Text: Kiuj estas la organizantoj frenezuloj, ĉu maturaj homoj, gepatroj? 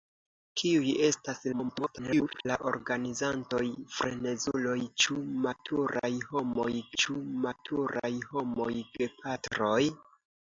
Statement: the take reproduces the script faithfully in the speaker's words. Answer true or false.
false